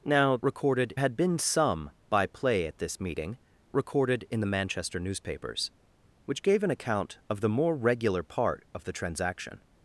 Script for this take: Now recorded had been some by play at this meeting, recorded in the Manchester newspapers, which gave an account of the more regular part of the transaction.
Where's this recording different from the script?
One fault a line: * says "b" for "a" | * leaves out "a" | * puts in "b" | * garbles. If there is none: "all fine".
all fine